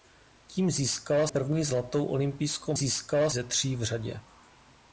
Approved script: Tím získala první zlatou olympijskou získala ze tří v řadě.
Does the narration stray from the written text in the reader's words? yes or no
no